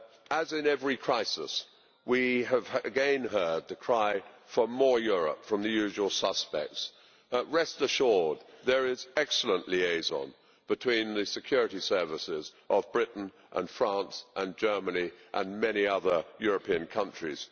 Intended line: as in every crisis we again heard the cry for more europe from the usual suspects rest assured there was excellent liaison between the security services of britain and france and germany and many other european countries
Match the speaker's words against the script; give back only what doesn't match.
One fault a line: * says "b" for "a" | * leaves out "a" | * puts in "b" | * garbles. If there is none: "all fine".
* puts in "have"
* says "is" for "was"